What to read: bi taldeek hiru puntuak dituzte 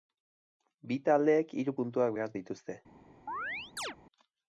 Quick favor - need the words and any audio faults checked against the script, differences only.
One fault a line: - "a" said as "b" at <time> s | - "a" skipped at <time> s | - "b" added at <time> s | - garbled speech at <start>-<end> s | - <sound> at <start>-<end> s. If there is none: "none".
- "behar" added at 2.2 s
- chirp at 3.3-4.0 s